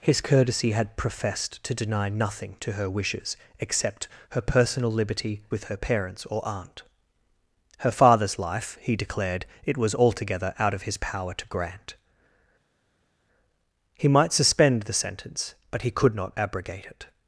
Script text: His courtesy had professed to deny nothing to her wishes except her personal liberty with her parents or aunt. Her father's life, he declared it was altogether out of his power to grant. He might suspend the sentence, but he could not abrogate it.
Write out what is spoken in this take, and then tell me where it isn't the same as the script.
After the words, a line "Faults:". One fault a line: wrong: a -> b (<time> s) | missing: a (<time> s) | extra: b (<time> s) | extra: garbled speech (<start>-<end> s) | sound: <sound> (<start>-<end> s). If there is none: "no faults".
His courtesy had professed to deny nothing to her wishes except her personal liberty with her parents or aunt. Her father's life, he declared it was altogether out of his power to grant. He might suspend the sentence, but he could not abrogate it.
Faults:
no faults